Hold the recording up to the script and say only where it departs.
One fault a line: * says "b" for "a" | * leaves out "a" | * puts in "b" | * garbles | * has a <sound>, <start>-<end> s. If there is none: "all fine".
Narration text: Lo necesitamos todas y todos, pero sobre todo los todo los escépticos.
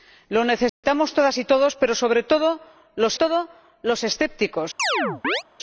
* has a dropout, 0.7-0.8 s
* has a chirp, 4.8-5.4 s